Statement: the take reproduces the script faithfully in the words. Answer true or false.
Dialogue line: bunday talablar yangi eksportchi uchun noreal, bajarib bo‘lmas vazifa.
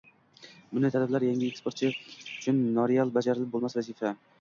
true